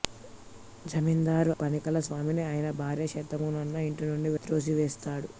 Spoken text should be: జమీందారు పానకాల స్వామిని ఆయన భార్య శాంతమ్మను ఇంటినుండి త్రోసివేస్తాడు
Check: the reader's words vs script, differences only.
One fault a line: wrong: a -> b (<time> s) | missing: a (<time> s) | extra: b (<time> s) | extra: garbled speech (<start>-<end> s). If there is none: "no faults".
no faults